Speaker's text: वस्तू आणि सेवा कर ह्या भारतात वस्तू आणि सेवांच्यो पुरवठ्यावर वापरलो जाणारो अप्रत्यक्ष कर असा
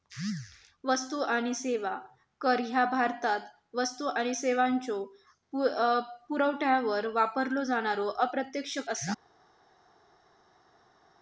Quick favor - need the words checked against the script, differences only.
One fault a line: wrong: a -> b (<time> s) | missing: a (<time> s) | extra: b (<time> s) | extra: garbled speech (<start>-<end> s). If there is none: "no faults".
missing: कर (8.8 s)